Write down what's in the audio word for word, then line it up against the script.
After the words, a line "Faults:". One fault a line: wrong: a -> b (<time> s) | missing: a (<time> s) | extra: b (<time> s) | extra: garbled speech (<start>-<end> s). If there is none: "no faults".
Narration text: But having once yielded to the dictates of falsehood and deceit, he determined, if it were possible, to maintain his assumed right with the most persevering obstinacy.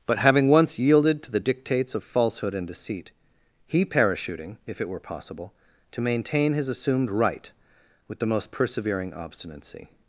But having once yielded to the dictates of falsehood and deceit, he parachuting, if it were possible, to maintain his assumed right with the most persevering obstinacy.
Faults:
wrong: determined -> parachuting (3.9 s)